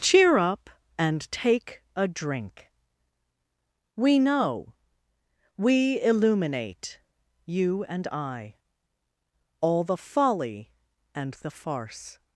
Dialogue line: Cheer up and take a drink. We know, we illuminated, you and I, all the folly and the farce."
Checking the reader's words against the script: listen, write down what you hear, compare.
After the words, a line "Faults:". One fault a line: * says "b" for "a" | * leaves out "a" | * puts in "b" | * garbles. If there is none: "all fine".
Cheer up and take a drink. We know, we illuminate, you and I, all the folly and the farce."
Faults:
* says "illuminate" for "illuminated"